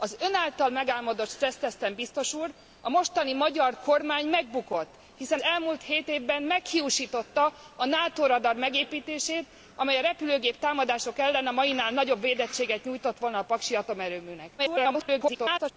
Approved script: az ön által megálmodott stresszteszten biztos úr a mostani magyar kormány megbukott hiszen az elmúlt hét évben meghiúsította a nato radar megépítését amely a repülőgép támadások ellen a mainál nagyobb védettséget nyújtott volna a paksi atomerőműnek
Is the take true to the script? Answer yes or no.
no